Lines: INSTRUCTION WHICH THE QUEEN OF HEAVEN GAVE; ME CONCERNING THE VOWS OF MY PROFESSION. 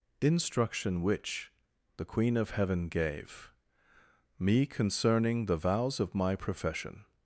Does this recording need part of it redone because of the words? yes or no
no